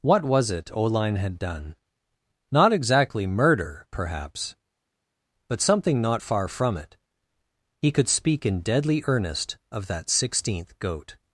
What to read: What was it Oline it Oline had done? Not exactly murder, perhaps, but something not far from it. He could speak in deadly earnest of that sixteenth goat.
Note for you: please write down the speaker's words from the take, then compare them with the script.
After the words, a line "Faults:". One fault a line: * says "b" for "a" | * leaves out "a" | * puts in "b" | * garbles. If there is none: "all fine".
What was it Oline had done? Not exactly murder, perhaps, but something not far from it. He could speak in deadly earnest of that sixteenth goat.
Faults:
* leaves out "it Oline"